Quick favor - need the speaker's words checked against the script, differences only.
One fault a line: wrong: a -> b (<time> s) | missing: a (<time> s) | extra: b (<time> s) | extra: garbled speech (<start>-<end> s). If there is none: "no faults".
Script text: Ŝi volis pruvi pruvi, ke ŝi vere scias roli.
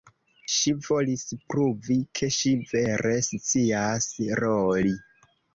missing: pruvi (2.0 s)